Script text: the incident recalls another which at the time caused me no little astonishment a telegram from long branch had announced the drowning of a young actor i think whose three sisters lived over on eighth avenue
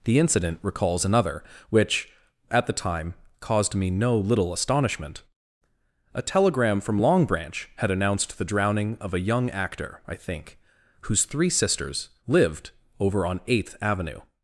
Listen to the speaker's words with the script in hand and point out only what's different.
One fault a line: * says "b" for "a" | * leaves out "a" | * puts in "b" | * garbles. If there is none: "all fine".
all fine